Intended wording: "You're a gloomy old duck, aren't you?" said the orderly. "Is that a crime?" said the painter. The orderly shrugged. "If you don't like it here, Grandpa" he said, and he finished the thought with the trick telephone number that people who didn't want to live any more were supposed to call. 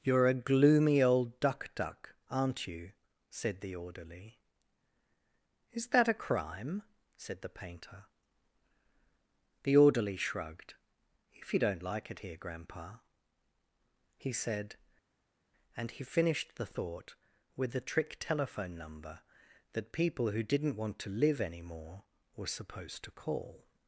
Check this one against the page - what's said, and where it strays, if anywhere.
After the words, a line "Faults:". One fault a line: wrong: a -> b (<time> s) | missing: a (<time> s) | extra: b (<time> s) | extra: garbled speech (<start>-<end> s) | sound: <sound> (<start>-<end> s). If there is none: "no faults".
"You're a gloomy old duck duck, aren't you?" said the orderly. "Is that a crime?" said the painter. The orderly shrugged. "If you don't like it here, Grandpa" he said, and he finished the thought with the trick telephone number that people who didn't want to live any more were supposed to call.
Faults:
extra: duck (1.8 s)